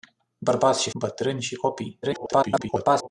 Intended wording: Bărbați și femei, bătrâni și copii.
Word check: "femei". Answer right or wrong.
wrong